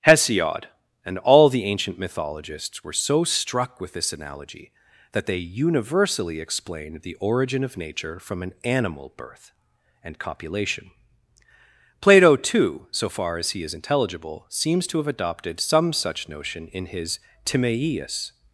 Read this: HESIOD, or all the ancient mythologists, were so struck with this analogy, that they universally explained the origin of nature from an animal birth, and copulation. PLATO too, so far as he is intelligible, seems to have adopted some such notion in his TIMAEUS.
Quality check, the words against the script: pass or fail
fail